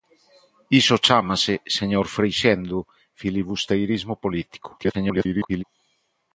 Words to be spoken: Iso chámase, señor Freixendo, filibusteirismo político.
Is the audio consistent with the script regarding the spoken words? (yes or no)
no